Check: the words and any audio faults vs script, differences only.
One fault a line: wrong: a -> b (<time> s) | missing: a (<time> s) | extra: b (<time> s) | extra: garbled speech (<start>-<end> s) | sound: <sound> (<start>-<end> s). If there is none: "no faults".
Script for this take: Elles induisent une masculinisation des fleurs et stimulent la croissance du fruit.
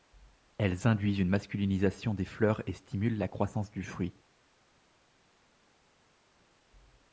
no faults